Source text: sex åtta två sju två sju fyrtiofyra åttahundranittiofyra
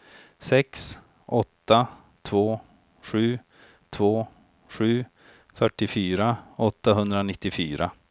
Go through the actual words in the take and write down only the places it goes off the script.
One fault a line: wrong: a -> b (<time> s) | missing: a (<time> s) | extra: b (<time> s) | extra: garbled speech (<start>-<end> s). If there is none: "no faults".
no faults